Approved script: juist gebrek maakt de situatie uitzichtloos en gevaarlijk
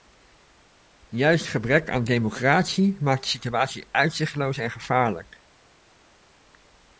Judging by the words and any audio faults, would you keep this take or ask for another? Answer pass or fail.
fail